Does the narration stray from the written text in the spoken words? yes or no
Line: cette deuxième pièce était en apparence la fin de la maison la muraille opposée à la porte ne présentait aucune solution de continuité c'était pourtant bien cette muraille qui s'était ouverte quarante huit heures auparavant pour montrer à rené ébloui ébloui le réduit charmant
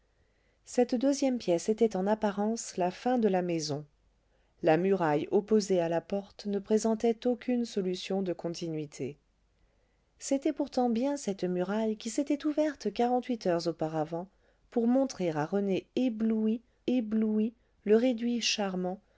no